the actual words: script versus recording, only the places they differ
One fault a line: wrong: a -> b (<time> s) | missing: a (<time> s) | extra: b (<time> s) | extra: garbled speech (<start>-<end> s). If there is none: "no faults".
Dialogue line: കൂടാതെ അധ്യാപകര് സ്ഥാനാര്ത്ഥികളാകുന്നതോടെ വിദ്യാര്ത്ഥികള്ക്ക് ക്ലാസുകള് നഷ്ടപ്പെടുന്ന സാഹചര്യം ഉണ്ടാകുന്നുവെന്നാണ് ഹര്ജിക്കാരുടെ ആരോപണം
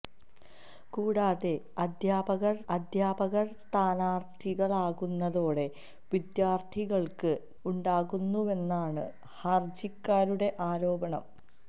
extra: അധ്യാപകര് (2.7 s)
missing: ക്ലാസുകള് നഷ്ടപ്പെടുന്ന സാഹചര്യം (7.3 s)